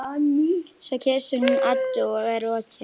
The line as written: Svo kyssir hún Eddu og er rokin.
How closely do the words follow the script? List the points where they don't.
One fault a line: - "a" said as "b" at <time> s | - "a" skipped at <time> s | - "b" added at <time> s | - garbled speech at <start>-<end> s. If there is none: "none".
none